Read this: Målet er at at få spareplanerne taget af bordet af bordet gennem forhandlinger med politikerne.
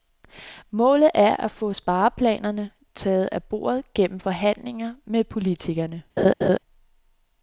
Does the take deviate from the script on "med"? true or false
false